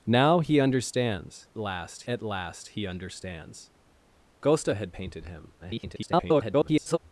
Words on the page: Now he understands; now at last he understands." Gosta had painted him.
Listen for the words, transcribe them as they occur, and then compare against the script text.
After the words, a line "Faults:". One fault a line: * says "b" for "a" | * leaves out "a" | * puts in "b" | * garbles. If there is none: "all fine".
Now he understands; last at last he understands." Gosta had painted him. [garbled]
Faults:
* says "last" for "now"
* garbles